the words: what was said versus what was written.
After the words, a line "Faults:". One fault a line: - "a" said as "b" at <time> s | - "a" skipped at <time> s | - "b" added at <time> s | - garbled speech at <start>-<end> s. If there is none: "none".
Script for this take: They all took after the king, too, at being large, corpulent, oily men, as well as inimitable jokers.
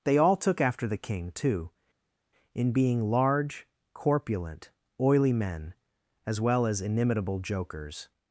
They all took after the king, too, in being large, corpulent, oily men, as well as inimitable jokers.
Faults:
- "at" said as "in" at 2.5 s